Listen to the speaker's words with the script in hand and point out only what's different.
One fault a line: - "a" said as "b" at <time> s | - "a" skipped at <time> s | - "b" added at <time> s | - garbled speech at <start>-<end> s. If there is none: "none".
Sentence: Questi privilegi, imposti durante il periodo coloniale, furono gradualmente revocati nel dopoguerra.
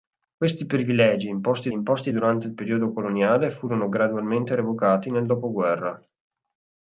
- "imposti" added at 1.7 s